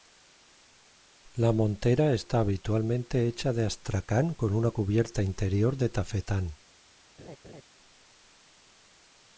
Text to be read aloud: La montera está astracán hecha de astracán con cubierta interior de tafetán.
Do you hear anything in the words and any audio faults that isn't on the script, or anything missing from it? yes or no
yes